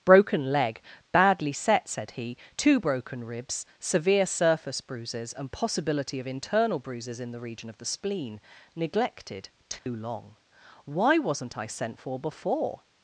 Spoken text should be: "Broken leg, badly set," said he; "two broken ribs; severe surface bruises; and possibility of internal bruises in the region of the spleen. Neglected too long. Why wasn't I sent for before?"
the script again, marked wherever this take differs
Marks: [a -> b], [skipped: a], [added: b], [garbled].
"Broken leg, badly set," said he; "two broken ribs; severe surface bruises; and possibility of internal bruises in the region of the spleen. Neglected too long. Why wasn't I sent for before?"